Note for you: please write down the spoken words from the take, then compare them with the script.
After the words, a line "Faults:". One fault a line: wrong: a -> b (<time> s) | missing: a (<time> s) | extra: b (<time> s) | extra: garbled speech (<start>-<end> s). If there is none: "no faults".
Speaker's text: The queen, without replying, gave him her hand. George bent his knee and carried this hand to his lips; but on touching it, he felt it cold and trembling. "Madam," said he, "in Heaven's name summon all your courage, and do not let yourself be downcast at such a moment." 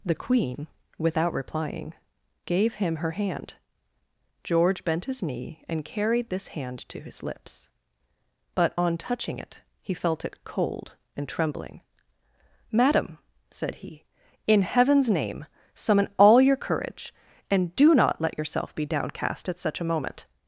The queen, without replying, gave him her hand. George bent his knee and carried this hand to his lips; but on touching it, he felt it cold and trembling. "Madam," said he, "in Heaven's name summon all your courage, and do not let yourself be downcast at such a moment."
Faults:
no faults